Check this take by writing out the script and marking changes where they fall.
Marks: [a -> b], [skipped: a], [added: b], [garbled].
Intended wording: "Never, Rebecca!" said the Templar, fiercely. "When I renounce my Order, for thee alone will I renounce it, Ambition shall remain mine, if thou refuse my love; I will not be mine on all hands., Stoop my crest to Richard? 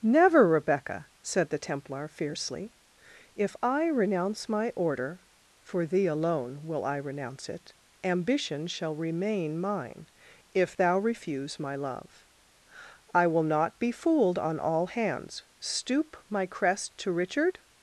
"Never, Rebecca!" said the Templar, fiercely. ["When -> If] I renounce my Order, for thee alone will I renounce it, Ambition shall remain mine, if thou refuse my love; I will not be [mine -> fooled] on all hands., Stoop my crest to Richard?